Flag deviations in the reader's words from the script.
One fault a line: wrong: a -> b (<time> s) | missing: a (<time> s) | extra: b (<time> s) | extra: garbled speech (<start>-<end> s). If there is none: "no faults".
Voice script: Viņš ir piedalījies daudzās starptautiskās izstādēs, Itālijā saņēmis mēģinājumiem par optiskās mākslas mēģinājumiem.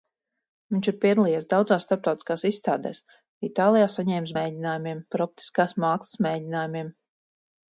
no faults